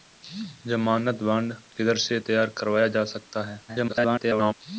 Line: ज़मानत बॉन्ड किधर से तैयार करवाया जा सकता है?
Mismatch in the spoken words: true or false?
true